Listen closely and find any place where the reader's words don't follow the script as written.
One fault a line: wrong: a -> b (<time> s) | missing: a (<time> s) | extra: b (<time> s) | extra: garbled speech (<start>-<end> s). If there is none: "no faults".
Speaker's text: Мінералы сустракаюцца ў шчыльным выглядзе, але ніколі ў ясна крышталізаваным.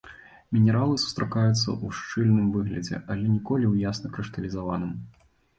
no faults